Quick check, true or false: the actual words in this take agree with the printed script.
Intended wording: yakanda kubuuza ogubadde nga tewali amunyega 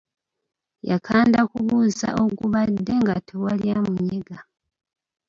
true